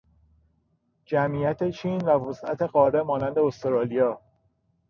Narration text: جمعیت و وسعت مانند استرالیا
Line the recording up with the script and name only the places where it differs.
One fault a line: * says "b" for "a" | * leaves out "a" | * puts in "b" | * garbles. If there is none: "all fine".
* puts in "چین"
* puts in "قاره"